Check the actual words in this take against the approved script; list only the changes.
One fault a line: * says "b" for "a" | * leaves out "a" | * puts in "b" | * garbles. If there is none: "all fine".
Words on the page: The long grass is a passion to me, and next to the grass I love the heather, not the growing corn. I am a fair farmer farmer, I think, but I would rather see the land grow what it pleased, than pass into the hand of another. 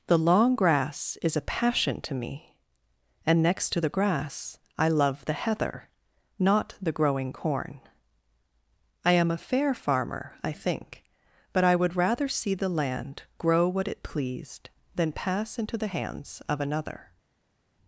* leaves out "farmer"
* says "hands" for "hand"